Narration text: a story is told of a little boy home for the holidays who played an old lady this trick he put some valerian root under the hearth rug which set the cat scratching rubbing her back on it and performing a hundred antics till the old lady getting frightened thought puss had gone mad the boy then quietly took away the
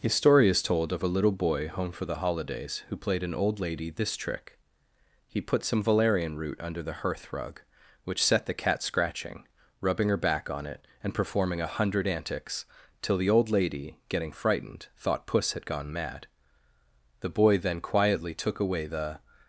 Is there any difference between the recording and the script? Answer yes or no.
no